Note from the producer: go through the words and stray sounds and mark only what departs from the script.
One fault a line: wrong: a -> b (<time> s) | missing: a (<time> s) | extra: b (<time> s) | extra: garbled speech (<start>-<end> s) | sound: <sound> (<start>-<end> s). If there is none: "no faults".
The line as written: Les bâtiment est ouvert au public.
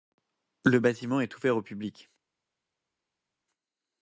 wrong: Les -> Le (0.7 s)